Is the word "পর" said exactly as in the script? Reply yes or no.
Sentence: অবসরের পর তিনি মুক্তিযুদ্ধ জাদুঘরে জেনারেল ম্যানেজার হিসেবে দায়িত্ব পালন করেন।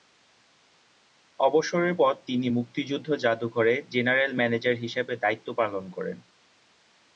yes